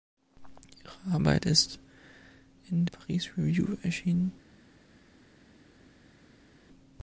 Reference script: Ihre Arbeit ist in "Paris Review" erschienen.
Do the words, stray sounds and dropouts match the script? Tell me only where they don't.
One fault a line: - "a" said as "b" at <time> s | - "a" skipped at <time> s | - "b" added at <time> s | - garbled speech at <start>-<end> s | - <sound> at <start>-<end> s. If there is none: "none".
none